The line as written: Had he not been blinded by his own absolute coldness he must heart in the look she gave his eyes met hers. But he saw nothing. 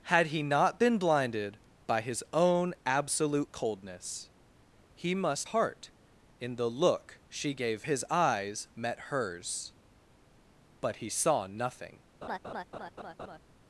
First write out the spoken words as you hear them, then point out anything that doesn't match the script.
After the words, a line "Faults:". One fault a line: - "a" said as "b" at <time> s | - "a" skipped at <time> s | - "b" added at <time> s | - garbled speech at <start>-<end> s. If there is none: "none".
Had he not been blinded by his own absolute coldness he must heart in the look she gave his eyes met hers. But he saw nothing.
Faults:
none